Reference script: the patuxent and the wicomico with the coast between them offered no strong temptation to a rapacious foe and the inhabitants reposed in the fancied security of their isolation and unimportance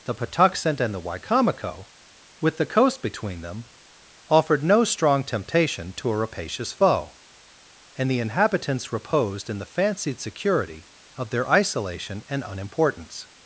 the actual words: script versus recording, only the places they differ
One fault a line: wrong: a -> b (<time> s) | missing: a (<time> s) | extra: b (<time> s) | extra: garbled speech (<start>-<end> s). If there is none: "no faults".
no faults